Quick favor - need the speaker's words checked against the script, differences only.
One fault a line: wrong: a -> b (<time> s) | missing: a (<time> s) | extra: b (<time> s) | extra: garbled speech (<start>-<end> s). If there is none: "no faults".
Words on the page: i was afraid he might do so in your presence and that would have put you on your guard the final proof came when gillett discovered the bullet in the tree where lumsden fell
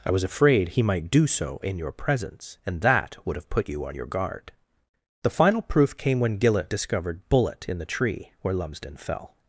missing: the (7.3 s)